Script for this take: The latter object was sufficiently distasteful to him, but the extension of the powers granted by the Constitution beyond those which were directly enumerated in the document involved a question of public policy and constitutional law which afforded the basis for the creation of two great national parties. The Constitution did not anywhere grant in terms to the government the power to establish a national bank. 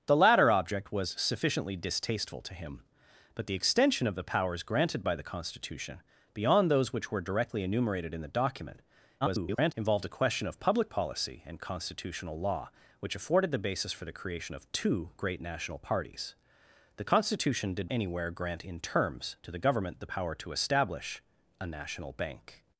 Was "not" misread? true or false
true